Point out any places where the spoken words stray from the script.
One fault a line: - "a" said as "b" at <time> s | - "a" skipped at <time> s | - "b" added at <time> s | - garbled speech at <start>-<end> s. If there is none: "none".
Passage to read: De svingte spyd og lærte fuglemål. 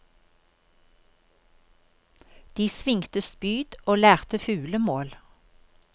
none